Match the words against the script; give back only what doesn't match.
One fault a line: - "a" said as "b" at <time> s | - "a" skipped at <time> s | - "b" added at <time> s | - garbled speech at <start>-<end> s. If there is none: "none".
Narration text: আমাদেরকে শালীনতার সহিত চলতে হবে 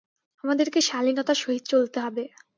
none